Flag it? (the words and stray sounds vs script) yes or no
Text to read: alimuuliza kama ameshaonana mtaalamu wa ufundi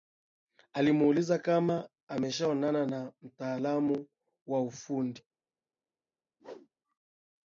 yes